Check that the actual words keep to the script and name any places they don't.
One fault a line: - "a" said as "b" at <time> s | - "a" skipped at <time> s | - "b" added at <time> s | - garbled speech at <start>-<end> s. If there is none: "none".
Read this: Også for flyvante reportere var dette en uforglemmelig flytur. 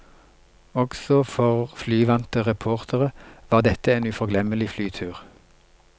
none